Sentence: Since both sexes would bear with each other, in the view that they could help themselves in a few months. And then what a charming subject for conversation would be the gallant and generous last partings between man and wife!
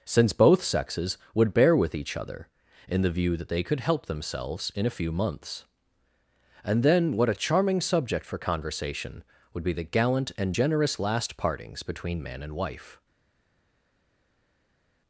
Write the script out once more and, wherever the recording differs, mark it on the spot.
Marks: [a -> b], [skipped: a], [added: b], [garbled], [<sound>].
Since both sexes would bear with each other, in the view that they could help themselves in a few months. And then what a charming subject for conversation would be the gallant and generous last partings between man and wife!